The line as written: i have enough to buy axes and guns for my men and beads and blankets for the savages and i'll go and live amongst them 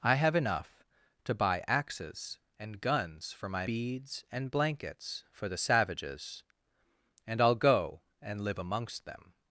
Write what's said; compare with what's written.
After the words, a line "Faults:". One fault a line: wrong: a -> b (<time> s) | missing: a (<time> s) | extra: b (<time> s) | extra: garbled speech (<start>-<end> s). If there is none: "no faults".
i have enough to buy axes and guns for my beads and blankets for the savages and i'll go and live amongst them
Faults:
missing: men and (3.7 s)